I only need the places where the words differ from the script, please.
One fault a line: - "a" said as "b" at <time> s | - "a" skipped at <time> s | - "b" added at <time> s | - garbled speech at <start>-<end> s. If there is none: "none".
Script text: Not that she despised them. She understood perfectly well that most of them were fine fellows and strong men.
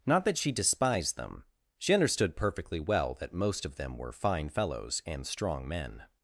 none